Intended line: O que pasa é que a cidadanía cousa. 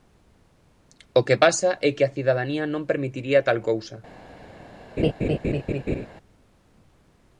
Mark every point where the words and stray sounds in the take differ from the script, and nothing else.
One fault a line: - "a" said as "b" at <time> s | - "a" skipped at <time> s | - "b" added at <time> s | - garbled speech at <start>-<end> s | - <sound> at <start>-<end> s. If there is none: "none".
- "non permitiría tal" added at 2.7 s
- laugh at 5.0-6.1 s